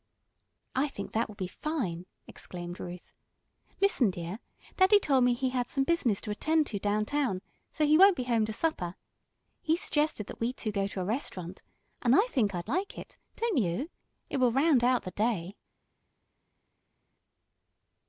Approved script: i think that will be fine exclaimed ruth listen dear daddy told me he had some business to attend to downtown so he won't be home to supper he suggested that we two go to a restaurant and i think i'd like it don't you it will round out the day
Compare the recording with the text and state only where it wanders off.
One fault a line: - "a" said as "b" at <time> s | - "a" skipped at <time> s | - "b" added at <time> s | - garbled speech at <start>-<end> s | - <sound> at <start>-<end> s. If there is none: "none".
none